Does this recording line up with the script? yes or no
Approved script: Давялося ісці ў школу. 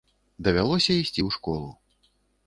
yes